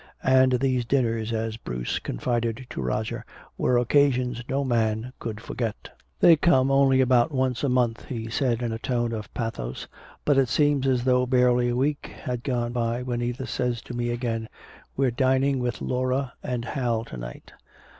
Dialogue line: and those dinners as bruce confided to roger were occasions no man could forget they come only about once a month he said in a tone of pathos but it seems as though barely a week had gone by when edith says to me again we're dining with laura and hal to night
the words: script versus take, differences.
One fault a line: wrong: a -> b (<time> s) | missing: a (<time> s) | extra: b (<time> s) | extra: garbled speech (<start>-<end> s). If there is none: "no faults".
wrong: those -> these (0.5 s)